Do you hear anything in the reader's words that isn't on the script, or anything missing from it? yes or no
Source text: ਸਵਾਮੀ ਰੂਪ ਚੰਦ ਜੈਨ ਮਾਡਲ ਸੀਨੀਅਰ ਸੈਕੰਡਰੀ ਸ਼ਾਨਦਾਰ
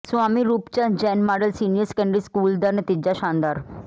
yes